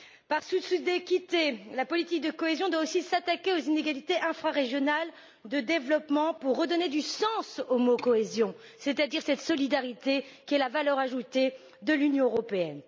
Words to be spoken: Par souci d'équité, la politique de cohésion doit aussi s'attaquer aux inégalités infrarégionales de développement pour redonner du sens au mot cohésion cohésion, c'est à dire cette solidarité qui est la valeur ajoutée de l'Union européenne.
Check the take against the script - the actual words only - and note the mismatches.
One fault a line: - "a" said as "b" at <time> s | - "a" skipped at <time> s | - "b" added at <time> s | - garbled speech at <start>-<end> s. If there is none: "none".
- "cohésion" skipped at 8.5 s